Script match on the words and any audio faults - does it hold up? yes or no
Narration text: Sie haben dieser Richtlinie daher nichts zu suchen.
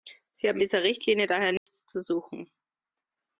no